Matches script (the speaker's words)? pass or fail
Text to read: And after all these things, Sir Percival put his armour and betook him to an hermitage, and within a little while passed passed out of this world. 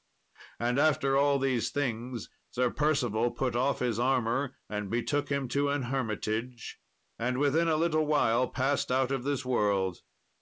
fail